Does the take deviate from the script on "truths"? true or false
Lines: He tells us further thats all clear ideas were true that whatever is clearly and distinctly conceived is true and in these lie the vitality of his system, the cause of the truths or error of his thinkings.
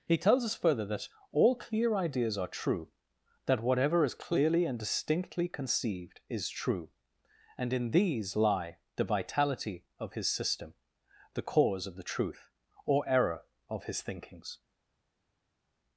true